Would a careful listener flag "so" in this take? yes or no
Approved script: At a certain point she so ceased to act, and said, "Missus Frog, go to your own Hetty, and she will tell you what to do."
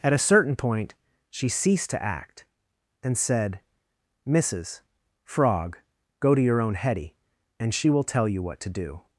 yes